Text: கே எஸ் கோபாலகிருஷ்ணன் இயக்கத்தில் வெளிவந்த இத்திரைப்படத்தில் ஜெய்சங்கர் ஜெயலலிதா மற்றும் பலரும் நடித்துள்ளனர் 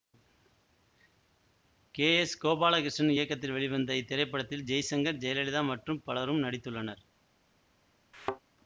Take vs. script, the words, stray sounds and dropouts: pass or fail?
fail